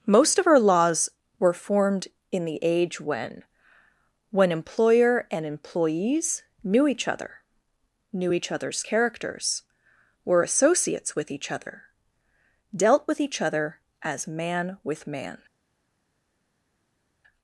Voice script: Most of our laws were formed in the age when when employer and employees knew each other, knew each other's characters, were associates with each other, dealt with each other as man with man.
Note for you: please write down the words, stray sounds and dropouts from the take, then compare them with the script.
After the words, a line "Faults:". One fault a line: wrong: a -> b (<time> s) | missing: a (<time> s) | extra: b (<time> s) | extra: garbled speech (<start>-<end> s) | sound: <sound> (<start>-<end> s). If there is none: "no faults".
Most of our laws were formed in the age when when employer and employees knew each other, knew each other's characters, were associates with each other, dealt with each other as man with man.
Faults:
no faults